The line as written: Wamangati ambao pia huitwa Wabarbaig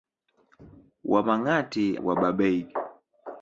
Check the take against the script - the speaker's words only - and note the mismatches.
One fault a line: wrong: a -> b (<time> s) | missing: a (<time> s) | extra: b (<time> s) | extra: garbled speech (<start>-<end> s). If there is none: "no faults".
missing: ambao pia huitwa (2.0 s)